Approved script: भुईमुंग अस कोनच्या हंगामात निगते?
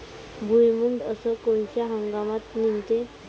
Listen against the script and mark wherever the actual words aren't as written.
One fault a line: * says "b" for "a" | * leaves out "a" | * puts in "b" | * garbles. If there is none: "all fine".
all fine